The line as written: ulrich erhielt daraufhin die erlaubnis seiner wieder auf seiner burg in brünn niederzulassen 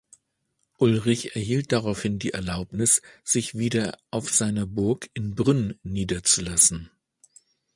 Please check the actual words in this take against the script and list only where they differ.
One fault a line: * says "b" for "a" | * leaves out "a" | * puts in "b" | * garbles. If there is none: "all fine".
* says "sich" for "seiner"